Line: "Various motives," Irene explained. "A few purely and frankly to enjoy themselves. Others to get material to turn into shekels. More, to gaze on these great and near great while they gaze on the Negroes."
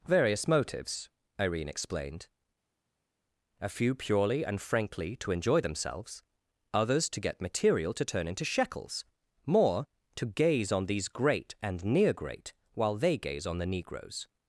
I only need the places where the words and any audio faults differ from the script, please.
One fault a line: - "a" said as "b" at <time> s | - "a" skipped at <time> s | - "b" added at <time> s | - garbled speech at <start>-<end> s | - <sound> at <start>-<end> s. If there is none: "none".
none